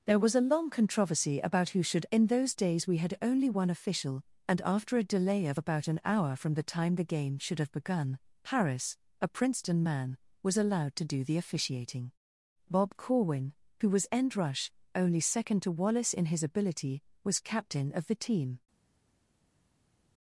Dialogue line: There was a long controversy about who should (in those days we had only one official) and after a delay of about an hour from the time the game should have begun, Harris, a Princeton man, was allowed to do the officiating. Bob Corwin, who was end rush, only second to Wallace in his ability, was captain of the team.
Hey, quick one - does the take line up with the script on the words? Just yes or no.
yes